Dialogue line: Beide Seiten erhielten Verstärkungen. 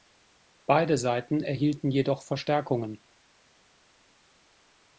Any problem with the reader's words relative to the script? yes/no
yes